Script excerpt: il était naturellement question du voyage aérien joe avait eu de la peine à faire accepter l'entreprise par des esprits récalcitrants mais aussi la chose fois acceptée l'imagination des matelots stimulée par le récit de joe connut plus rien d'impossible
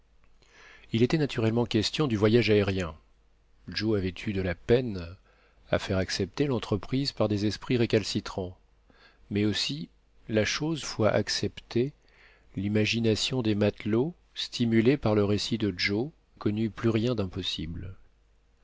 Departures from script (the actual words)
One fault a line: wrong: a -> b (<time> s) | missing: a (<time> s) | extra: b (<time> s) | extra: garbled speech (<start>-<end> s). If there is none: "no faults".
no faults